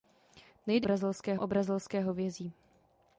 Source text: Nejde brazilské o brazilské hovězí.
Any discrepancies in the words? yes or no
no